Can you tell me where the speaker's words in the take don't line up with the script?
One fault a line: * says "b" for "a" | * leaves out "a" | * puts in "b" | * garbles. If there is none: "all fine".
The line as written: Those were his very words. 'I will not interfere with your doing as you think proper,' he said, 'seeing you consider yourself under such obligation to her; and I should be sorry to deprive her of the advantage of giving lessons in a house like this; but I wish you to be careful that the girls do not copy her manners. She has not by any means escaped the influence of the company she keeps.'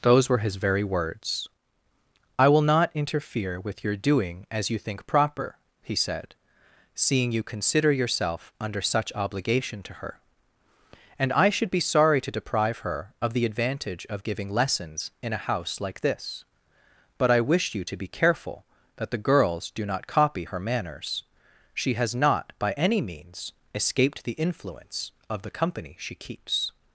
all fine